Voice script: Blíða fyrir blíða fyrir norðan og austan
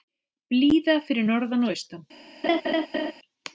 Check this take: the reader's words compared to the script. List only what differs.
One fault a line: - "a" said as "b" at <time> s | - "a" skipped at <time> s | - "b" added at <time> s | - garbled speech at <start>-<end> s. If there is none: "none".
- "blíða fyrir" skipped at 1.3 s